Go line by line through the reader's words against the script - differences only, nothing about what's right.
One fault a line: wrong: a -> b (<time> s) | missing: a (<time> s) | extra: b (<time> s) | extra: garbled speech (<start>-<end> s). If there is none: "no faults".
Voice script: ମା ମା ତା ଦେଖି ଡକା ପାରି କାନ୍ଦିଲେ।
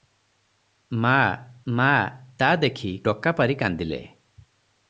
no faults